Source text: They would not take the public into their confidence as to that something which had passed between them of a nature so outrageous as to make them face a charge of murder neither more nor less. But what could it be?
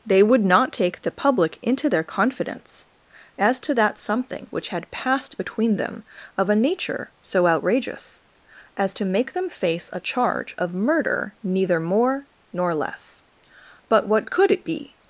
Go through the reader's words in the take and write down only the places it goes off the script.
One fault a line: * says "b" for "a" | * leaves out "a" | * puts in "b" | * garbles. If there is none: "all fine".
all fine